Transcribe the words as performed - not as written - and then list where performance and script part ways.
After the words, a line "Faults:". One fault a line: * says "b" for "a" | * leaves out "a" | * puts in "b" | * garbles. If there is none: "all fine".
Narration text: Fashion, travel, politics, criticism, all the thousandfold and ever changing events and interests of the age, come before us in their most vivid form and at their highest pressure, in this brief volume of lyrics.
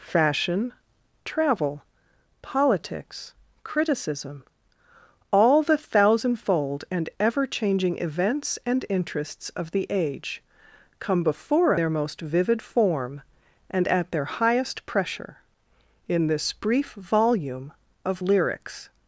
Fashion, travel, politics, criticism, all the thousandfold and ever changing events and interests of the age, come before their most vivid form and at their highest pressure, in this brief volume of lyrics.
Faults:
* leaves out "us in"